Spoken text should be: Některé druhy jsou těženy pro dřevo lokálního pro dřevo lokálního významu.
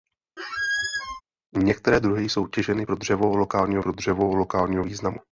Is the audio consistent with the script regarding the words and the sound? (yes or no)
no